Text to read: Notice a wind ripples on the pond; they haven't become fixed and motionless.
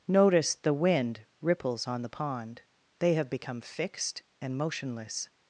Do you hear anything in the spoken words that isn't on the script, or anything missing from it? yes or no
yes